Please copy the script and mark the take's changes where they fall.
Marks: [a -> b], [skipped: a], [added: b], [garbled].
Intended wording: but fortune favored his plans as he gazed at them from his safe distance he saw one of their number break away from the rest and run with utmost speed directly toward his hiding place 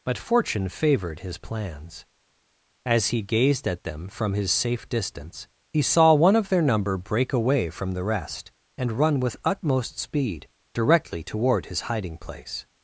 but fortune favored his plans as he gazed at them from his safe distance he saw one of their number break away from the rest and run with utmost speed directly toward his hiding place